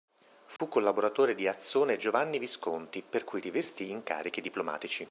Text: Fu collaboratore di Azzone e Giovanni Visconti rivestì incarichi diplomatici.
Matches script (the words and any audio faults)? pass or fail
fail